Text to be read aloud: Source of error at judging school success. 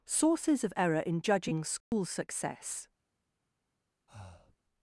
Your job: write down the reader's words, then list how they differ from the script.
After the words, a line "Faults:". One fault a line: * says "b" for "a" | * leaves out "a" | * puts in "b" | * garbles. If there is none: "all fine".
Sources of error in judging school success.
Faults:
* says "Sources" for "Source"
* says "in" for "at"